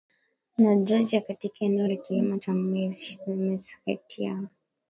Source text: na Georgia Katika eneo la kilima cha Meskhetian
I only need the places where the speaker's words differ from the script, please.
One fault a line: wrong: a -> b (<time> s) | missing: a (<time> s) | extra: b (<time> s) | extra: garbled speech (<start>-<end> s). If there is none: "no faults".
no faults